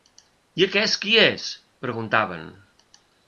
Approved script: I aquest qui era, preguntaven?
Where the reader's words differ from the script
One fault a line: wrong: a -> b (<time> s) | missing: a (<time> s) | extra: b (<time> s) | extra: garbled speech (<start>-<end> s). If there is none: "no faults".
wrong: era -> és (1.2 s)